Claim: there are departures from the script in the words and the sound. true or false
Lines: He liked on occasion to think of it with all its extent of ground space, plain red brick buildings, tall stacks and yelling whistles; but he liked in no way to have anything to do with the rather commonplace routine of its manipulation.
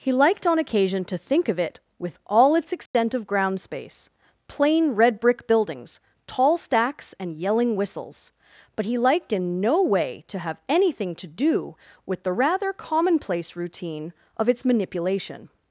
true